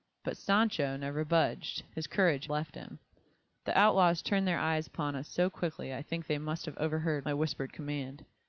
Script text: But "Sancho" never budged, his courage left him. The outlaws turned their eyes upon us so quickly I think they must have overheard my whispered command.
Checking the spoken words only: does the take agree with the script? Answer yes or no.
yes